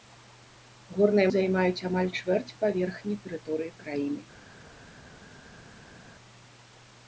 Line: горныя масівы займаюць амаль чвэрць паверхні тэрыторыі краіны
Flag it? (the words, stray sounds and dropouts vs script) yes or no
yes